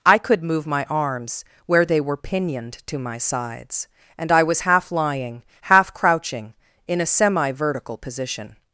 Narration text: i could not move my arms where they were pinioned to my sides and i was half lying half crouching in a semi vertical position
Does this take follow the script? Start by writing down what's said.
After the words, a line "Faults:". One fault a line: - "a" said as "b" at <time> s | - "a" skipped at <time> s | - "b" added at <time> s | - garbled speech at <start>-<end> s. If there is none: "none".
i could move my arms where they were pinioned to my sides and i was half lying half crouching in a semi vertical position
Faults:
- "not" skipped at 0.4 s